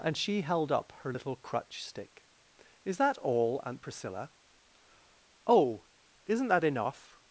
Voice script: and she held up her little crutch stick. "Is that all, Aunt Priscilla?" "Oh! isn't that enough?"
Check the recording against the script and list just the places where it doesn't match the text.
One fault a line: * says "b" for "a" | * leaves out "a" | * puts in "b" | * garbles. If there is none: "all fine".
all fine